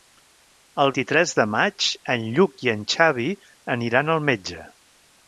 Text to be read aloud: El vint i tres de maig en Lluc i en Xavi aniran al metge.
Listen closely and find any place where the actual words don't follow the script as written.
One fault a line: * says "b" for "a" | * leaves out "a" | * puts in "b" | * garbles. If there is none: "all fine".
* leaves out "vint"